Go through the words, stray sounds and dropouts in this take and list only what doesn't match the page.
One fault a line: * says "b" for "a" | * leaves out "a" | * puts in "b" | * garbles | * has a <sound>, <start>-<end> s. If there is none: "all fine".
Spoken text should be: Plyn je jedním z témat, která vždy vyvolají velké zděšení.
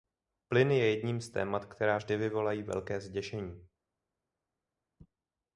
all fine